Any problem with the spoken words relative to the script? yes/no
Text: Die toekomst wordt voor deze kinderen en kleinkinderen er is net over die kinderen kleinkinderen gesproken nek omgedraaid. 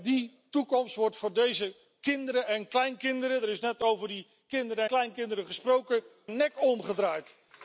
no